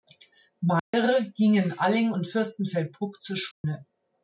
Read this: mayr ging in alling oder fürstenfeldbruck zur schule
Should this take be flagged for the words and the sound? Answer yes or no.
yes